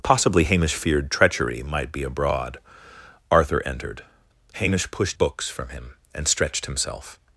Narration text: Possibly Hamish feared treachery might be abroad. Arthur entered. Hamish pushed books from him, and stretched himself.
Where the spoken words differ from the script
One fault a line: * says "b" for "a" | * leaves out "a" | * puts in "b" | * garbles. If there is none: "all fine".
all fine